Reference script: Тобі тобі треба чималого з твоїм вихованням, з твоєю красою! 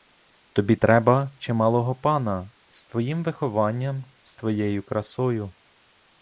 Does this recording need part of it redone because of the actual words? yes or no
yes